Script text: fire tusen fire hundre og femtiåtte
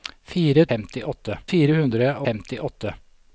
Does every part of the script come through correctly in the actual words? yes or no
no